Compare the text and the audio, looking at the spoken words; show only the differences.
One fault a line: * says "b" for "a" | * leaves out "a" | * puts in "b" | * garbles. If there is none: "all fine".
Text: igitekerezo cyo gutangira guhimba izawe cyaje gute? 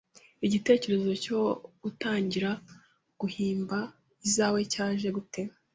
all fine